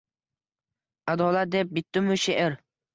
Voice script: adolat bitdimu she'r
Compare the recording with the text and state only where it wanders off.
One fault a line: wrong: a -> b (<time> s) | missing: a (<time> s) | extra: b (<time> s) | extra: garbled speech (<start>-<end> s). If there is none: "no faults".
extra: deb (1.6 s)